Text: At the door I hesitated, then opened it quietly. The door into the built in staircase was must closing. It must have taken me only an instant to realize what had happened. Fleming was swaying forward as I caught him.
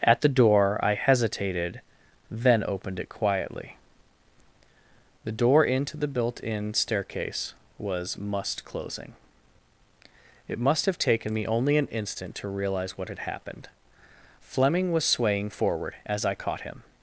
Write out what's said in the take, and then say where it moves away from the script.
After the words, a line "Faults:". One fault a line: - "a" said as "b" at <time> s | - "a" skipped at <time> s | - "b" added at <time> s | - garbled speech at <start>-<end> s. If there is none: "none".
At the door I hesitated, then opened it quietly. The door into the built in staircase was must closing. It must have taken me only an instant to realize what had happened. Fleming was swaying forward as I caught him.
Faults:
none